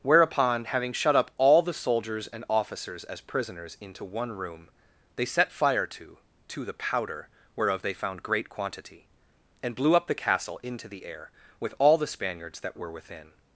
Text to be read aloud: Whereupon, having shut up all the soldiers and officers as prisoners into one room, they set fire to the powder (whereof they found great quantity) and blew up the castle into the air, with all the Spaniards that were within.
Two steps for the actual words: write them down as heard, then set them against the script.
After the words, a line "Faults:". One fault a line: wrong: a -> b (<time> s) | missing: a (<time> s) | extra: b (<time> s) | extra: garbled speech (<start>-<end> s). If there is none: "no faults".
Whereupon, having shut up all the soldiers and officers as prisoners into one room, they set fire to to the powder (whereof they found great quantity) and blew up the castle into the air, with all the Spaniards that were within.
Faults:
extra: to (6.5 s)